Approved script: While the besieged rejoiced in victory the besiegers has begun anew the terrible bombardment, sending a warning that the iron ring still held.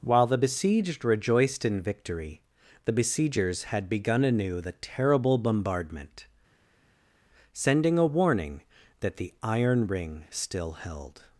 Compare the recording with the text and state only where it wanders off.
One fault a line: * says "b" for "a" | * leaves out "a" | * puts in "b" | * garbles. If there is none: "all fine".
* says "had" for "has"